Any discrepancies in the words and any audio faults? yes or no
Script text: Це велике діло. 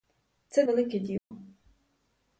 yes